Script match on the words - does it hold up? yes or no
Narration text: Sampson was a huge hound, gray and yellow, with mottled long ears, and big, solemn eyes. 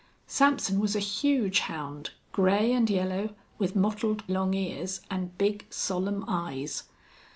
yes